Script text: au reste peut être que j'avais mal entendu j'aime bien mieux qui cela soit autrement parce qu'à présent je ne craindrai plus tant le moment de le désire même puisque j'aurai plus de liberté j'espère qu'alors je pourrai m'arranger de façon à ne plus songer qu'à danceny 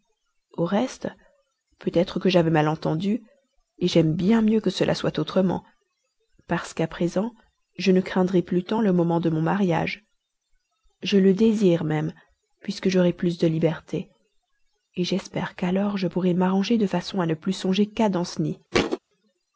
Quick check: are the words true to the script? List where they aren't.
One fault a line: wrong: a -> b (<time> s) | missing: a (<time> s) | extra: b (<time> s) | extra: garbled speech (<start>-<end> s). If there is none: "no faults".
wrong: qui -> que (4.6 s)
extra: mon mariage je (9.3 s)